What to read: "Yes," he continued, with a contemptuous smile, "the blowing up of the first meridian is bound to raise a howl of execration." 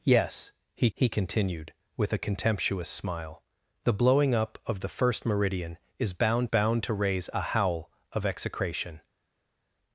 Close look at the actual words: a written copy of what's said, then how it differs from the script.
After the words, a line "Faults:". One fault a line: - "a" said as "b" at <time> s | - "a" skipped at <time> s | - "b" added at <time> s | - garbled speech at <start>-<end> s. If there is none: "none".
"Yes," he he continued, with a contemptuous smile, "the blowing up of the first meridian is bound bound to raise a howl of execration."
Faults:
- "he" added at 0.9 s
- "bound" added at 6.4 s